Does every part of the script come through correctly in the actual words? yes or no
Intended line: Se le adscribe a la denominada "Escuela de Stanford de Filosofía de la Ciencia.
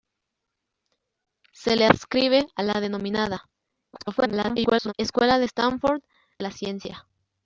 no